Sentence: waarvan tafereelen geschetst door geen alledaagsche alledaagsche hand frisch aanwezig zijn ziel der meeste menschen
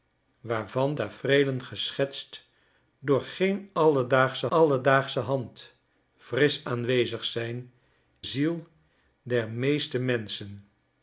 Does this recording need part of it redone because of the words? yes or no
no